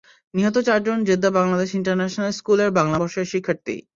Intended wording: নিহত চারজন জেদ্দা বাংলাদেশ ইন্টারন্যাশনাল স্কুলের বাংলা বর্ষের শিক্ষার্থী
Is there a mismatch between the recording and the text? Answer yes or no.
no